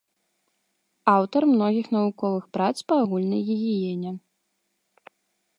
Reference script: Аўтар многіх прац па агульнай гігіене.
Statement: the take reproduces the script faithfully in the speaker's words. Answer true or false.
false